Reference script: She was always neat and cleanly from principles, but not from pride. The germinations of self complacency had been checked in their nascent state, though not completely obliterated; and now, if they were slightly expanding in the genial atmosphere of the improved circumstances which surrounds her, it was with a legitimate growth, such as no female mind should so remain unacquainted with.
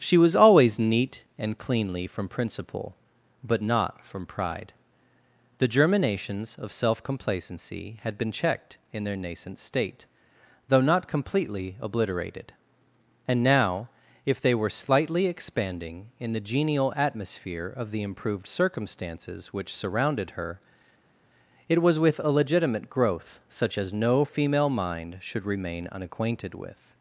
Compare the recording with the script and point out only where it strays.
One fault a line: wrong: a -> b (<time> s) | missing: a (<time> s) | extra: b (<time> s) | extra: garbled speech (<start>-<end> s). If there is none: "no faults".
wrong: principles -> principle (2.3 s)
wrong: surrounds -> surrounded (19.8 s)
missing: so (25.5 s)